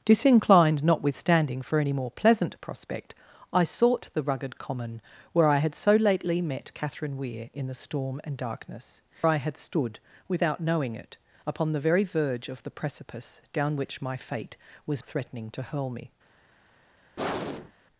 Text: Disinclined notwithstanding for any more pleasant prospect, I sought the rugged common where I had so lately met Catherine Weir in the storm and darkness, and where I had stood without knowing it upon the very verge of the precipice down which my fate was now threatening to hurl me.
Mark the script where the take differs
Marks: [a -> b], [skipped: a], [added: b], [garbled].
Disinclined notwithstanding for any more pleasant prospect, I sought the rugged common where I had so lately met Catherine Weir in the storm and darkness, [skipped: and where] I had stood without knowing it upon the very verge of the precipice down which my fate was [skipped: now] threatening to hurl me.